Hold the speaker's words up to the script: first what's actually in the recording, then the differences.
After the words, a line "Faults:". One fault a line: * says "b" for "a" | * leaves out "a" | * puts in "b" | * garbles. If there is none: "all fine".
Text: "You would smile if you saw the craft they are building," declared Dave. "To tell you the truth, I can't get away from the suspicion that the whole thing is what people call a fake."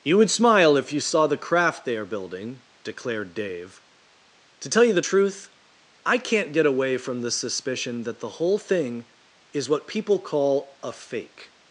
"You would smile if you saw the craft they are building," declared Dave. "To tell you the truth, I can't get away from the suspicion that the whole thing is what people call a fake."
Faults:
all fine